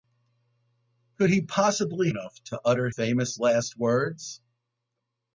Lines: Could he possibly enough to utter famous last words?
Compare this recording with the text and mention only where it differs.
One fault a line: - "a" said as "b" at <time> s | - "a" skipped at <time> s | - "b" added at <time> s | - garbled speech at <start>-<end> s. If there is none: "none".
none